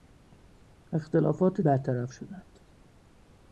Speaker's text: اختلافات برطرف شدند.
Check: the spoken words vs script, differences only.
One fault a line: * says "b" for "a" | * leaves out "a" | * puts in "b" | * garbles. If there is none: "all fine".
all fine